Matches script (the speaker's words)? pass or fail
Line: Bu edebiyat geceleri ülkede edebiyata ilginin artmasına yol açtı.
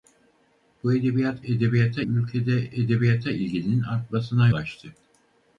fail